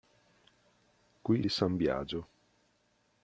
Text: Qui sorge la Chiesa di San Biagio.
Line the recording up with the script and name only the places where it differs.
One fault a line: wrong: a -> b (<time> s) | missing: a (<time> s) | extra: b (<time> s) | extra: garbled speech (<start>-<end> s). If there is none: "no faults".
missing: sorge la Chiesa (1.4 s)